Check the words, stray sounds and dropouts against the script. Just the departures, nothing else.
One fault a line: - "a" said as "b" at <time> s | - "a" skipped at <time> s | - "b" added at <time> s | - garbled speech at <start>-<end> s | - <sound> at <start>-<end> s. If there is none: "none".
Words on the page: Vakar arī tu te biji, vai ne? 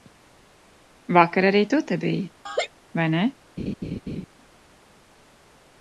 - laugh at 2.5-2.7 s
- laugh at 3.6-4.3 s